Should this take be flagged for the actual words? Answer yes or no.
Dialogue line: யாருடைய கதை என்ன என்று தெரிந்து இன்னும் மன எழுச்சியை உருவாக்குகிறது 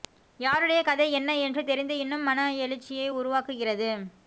no